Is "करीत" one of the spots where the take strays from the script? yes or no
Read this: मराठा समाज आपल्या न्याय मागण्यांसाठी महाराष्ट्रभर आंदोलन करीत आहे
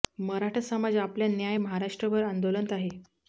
yes